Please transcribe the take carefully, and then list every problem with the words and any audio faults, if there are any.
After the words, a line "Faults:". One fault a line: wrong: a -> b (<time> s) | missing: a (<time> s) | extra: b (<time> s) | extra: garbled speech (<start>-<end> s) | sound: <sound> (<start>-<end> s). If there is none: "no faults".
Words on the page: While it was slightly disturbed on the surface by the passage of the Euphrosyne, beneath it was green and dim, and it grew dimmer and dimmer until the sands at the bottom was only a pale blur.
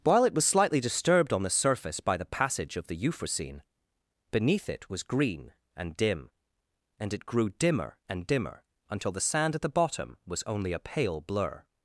While it was slightly disturbed on the surface by the passage of the Euphrosyne, beneath it was green and dim, and it grew dimmer and dimmer until the sand at the bottom was only a pale blur.
Faults:
wrong: sands -> sand (9.2 s)